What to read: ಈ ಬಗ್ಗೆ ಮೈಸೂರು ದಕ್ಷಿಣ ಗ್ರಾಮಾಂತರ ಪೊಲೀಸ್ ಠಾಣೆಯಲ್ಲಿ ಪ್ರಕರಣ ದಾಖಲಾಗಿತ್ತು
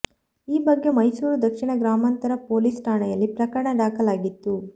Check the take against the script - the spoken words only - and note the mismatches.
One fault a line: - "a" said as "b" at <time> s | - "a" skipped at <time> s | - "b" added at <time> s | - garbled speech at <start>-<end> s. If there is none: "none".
none